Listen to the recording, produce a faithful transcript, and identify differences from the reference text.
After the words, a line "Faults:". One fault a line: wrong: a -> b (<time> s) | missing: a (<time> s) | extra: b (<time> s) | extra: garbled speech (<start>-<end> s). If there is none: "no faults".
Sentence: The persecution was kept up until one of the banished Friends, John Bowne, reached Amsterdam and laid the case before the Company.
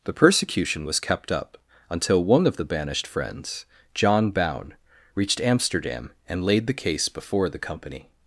The persecution was kept up until one of the banished Friends, John Bowne, reached Amsterdam and laid the case before the Company.
Faults:
no faults